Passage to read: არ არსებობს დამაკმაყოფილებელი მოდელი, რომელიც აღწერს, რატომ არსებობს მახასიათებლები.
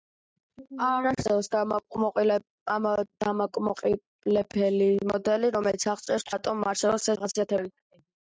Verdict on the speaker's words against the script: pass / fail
pass